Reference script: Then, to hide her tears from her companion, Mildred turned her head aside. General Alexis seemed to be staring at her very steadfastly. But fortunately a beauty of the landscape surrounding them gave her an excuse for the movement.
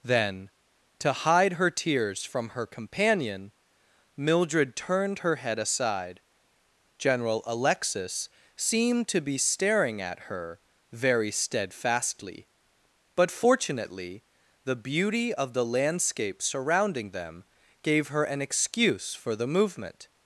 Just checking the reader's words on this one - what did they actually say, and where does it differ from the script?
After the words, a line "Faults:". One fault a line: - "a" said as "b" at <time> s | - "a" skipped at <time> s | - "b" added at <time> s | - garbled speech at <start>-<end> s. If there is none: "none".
Then, to hide her tears from her companion, Mildred turned her head aside. General Alexis seemed to be staring at her very steadfastly. But fortunately the beauty of the landscape surrounding them gave her an excuse for the movement.
Faults:
- "a" said as "the" at 14.6 s